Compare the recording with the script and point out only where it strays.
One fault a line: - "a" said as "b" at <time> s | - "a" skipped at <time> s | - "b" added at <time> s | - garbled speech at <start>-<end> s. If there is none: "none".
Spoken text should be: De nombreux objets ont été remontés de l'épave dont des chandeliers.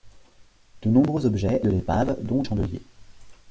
- "ont été remontés" skipped at 1.6 s
- "des" skipped at 2.4 s